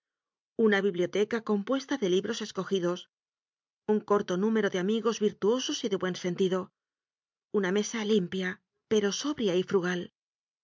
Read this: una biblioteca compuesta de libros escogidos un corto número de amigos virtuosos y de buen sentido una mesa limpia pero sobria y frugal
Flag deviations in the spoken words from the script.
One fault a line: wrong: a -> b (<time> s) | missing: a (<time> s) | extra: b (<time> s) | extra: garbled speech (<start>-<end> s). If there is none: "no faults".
no faults